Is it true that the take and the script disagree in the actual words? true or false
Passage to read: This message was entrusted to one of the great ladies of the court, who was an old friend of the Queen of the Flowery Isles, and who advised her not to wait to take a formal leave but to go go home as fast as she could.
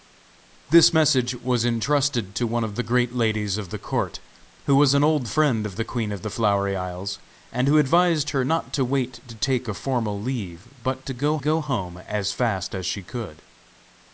false